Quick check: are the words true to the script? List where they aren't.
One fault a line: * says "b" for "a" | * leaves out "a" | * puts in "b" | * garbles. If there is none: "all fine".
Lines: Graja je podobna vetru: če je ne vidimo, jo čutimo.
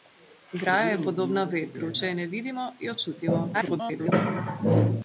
* garbles